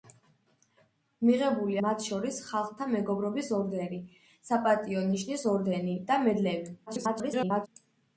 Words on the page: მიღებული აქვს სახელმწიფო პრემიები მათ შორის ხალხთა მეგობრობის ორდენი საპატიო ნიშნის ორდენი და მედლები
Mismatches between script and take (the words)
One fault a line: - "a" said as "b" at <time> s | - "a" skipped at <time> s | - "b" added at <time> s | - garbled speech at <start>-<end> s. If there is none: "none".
- "აქვს სახელმწიფო პრემიები" skipped at 1.8 s
- garbled speech at 6.9-7.7 s